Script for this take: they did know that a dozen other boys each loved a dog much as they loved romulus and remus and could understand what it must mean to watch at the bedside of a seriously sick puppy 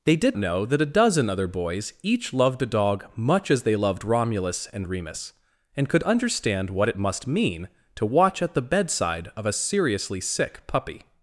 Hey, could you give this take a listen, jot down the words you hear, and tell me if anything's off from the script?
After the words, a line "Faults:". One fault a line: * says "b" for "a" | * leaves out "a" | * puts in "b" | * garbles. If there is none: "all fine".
they did know that a dozen other boys each loved a dog much as they loved romulus and remus and could understand what it must mean to watch at the bedside of a seriously sick puppy
Faults:
all fine